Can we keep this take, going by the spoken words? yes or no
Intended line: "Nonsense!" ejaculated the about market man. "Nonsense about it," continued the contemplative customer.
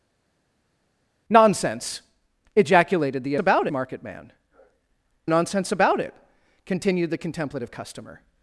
yes